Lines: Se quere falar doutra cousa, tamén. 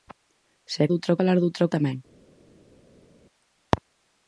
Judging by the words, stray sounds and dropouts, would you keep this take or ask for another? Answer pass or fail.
fail